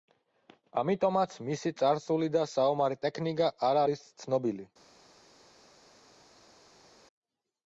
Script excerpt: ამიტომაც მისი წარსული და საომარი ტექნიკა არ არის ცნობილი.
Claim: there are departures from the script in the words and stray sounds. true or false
false